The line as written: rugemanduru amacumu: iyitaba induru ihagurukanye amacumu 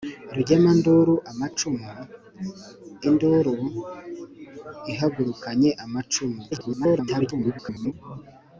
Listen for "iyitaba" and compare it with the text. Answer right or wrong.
wrong